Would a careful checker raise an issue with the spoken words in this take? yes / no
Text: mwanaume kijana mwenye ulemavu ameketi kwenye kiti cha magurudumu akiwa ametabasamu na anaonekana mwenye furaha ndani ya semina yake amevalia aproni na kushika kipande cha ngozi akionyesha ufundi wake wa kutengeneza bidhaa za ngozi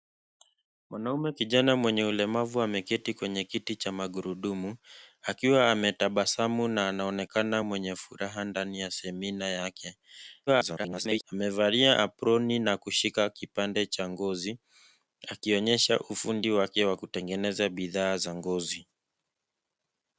yes